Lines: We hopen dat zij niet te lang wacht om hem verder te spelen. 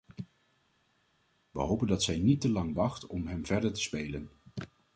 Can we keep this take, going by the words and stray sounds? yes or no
yes